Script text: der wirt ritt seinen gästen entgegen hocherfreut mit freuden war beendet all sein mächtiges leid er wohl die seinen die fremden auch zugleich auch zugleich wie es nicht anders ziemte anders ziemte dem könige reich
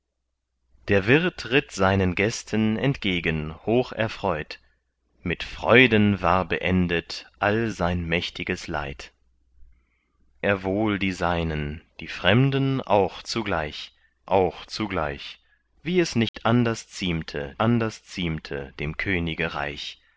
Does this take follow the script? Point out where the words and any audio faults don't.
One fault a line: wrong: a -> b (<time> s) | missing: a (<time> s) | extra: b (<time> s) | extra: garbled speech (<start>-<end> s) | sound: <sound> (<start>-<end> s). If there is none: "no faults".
sound: dropout (16.3-16.3 s)